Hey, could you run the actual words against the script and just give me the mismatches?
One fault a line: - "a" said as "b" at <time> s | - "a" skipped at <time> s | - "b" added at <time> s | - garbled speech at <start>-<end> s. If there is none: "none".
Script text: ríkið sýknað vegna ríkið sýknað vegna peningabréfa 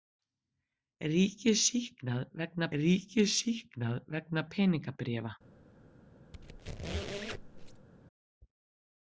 none